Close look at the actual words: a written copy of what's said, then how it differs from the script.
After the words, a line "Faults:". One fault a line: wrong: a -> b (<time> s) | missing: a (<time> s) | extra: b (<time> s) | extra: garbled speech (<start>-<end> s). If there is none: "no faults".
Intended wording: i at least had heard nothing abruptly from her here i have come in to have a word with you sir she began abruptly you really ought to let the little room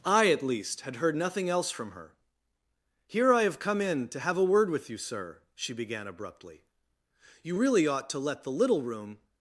i at least had heard nothing else from her here i have come in to have a word with you sir she began abruptly you really ought to let the little room
Faults:
wrong: abruptly -> else (1.5 s)